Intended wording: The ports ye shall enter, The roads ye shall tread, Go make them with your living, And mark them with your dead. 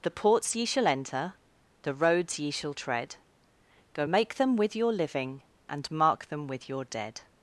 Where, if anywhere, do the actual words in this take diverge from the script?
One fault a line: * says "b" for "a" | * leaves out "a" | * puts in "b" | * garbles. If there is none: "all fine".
all fine